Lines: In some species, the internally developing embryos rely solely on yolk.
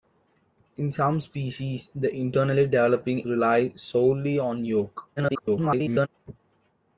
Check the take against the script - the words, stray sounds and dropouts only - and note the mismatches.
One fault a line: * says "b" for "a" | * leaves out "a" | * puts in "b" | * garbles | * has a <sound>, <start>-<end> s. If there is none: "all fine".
* leaves out "embryos"
* garbles